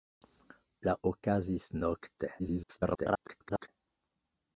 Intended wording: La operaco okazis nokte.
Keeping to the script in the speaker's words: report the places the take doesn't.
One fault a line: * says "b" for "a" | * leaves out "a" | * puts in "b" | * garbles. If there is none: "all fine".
* leaves out "operaco"
* garbles